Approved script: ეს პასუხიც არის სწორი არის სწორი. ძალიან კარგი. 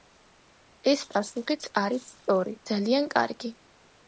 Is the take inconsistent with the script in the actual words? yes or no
yes